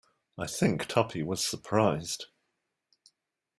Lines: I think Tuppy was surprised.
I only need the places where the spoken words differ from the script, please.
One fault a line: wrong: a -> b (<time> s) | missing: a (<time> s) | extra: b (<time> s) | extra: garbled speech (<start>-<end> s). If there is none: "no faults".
no faults